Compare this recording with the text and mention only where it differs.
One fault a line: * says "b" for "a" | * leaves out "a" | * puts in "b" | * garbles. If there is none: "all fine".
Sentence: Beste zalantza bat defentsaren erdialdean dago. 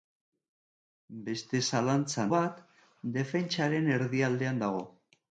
all fine